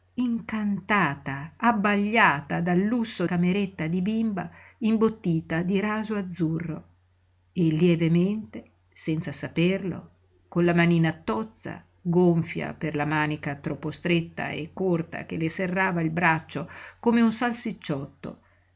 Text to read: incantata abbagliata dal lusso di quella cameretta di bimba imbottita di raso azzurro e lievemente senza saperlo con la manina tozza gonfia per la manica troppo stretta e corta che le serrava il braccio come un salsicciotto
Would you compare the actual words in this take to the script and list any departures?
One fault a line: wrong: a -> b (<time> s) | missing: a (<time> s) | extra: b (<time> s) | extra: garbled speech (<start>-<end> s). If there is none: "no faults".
missing: di quella (3.3 s)